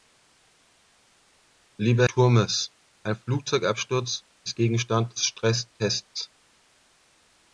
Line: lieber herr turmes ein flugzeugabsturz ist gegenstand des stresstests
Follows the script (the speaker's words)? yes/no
no